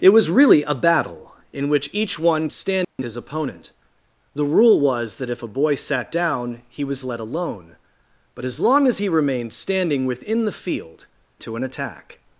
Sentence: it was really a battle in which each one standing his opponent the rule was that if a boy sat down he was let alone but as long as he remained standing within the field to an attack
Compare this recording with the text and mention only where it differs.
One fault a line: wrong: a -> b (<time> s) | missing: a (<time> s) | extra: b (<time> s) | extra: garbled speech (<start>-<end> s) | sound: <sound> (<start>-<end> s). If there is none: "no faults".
sound: dropout (2.8-3.0 s)